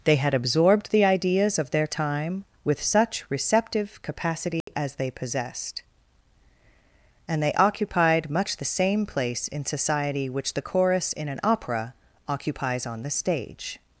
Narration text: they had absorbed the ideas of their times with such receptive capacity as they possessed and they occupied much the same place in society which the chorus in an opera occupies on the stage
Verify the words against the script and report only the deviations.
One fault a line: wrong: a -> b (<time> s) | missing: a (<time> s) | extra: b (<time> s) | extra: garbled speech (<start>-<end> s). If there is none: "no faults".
wrong: times -> time (1.9 s)